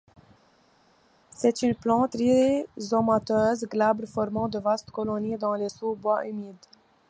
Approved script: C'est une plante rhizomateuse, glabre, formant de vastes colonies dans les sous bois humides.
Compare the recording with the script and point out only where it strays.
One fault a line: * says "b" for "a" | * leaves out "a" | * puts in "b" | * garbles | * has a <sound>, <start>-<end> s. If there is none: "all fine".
all fine